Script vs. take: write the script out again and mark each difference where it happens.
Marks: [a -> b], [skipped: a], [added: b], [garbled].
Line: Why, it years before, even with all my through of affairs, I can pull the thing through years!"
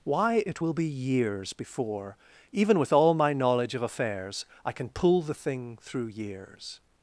Why, it [added: will be] years before, even with all my [through -> knowledge] of affairs, I can pull the thing through years!"